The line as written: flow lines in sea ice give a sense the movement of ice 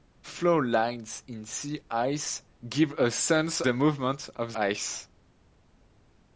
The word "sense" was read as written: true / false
true